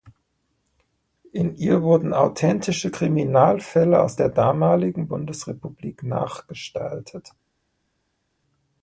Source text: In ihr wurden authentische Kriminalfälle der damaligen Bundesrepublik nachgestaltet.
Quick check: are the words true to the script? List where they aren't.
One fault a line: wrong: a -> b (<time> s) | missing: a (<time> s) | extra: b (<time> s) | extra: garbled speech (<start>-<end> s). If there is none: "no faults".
extra: aus (4.0 s)